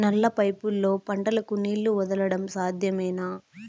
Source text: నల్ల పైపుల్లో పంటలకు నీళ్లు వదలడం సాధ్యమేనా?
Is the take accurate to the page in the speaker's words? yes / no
yes